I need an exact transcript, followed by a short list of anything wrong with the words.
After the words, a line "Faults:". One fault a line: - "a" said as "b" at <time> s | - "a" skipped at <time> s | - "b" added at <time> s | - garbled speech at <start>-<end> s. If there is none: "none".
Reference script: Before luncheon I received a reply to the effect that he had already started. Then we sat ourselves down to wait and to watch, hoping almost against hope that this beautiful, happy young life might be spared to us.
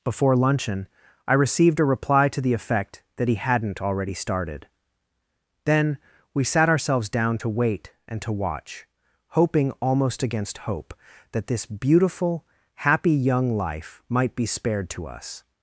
Before luncheon I received a reply to the effect that he hadn't already started. Then we sat ourselves down to wait and to watch, hoping almost against hope that this beautiful, happy young life might be spared to us.
Faults:
- "had" said as "hadn't" at 3.4 s